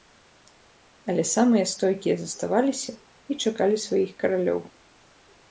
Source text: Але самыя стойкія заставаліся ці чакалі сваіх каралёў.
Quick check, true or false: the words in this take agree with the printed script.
false